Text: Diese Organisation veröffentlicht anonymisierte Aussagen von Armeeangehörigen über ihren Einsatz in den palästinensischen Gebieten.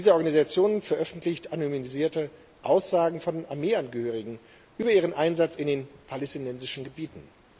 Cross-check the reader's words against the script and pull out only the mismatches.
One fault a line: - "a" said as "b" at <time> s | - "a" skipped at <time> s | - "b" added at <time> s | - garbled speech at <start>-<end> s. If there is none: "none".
none